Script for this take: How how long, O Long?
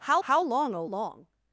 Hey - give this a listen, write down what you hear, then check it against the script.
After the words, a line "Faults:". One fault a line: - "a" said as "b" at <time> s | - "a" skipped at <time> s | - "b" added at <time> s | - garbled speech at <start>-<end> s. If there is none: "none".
How how long, O Long?
Faults:
none